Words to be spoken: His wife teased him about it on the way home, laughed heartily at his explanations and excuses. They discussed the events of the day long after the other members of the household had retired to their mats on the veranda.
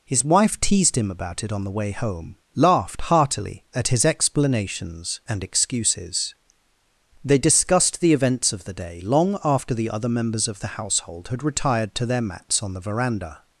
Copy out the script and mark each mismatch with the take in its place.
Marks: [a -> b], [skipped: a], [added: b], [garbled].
His wife teased him about it on the way home, laughed heartily at his explanations and excuses. They discussed the events of the day long after the other members of the household had retired to their mats on the veranda.